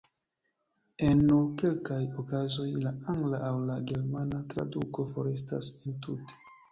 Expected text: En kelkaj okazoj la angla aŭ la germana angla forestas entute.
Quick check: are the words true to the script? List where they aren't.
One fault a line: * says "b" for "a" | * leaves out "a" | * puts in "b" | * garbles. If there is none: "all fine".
* puts in "nur"
* says "traduko" for "angla"